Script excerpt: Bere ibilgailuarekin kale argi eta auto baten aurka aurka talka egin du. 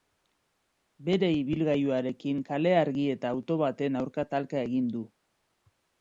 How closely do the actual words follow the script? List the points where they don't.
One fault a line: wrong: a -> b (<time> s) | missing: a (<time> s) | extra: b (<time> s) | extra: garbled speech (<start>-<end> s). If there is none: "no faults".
missing: aurka (4.2 s)